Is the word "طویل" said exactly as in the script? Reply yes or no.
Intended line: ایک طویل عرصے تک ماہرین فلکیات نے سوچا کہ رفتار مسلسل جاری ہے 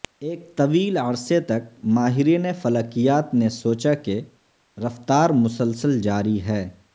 yes